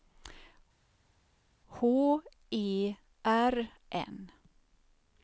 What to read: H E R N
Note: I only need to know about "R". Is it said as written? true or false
true